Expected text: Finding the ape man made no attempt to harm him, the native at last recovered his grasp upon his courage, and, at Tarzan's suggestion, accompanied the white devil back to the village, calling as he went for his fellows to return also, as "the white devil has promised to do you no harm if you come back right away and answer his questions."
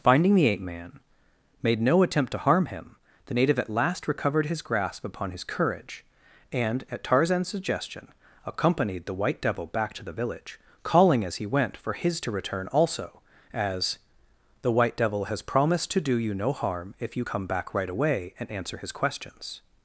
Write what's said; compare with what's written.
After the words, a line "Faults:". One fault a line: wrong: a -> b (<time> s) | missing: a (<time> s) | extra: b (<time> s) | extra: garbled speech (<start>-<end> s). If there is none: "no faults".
Finding the ape man made no attempt to harm him, the native at last recovered his grasp upon his courage, and, at Tarzan's suggestion, accompanied the white devil back to the village, calling as he went for his to return also, as "the white devil has promised to do you no harm if you come back right away and answer his questions."
Faults:
missing: fellows (12.2 s)